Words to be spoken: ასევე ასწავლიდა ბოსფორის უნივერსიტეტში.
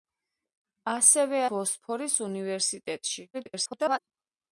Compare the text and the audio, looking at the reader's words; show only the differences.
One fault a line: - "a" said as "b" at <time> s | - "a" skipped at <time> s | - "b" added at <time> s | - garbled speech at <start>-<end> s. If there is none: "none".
- "ასწავლიდა" skipped at 1.4 s
- garbled speech at 3.3-4.0 s